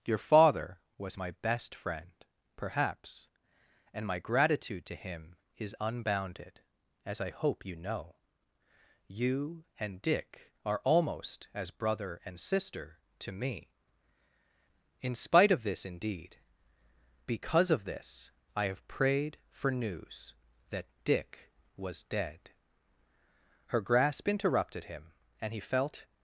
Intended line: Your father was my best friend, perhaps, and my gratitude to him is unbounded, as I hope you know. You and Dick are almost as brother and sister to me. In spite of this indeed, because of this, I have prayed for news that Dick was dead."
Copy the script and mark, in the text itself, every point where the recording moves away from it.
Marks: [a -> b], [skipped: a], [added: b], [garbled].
Your father was my best friend, perhaps, and my gratitude to him is unbounded, as I hope you know. You and Dick are almost as brother and sister to me. In spite of this indeed, because of this, I have prayed for news that Dick was dead." [added: Her grasp interrupted him and he felt]